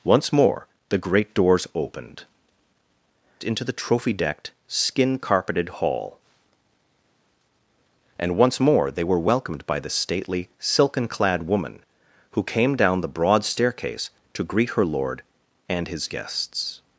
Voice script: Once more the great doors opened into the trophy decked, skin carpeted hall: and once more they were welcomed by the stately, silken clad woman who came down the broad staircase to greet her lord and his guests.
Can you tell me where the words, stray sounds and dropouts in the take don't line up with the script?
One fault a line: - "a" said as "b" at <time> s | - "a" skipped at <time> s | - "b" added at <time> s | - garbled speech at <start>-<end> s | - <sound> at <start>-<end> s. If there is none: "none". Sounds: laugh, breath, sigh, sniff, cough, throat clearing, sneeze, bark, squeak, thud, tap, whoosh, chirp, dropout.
none